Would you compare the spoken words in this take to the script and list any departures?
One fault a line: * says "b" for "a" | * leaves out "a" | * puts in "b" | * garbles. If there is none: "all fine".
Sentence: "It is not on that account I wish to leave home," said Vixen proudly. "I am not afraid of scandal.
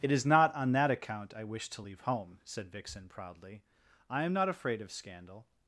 all fine